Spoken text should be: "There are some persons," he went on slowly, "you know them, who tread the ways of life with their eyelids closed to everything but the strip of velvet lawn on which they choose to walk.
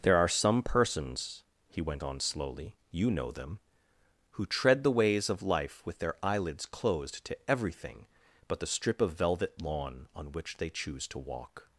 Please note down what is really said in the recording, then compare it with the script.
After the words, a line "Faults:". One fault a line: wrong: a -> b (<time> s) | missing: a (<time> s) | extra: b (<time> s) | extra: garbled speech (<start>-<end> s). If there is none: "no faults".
"There are some persons," he went on slowly, "you know them, who tread the ways of life with their eyelids closed to everything but the strip of velvet lawn on which they choose to walk.
Faults:
no faults